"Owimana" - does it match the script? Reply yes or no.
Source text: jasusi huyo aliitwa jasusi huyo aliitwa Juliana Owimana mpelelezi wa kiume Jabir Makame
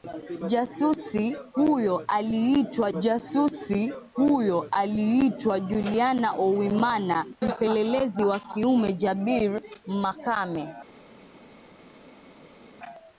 yes